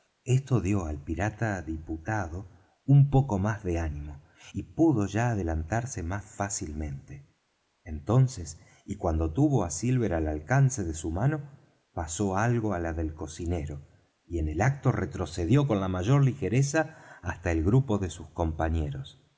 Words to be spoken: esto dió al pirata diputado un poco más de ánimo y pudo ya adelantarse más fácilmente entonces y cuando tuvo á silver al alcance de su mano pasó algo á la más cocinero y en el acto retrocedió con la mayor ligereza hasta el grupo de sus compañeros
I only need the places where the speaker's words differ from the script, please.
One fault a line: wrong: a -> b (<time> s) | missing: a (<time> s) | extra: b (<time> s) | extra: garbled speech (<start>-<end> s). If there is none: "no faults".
wrong: más -> del (12.9 s)